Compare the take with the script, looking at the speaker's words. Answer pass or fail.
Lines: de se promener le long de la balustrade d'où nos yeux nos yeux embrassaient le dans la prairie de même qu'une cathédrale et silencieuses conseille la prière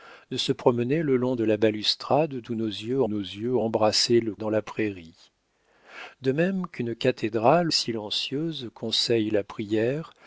pass